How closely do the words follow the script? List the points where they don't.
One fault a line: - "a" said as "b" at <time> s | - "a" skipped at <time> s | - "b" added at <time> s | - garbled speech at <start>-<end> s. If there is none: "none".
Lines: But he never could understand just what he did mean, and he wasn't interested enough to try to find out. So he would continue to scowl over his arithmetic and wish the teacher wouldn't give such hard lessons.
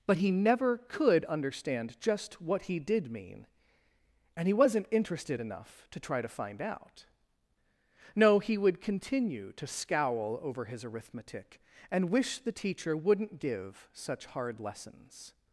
- "So" said as "No" at 8.1 s